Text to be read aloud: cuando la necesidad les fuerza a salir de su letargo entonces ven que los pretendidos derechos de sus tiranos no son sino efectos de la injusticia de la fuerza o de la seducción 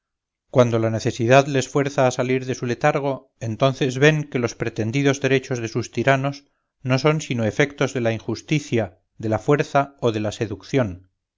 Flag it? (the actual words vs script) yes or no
no